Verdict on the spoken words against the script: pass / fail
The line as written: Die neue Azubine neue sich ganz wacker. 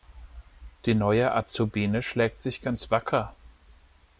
fail